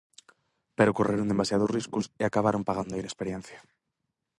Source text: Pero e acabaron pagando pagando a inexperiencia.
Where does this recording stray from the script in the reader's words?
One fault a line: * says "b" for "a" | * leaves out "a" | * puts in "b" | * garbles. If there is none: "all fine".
* puts in "correron demasiados riscos"
* leaves out "pagando"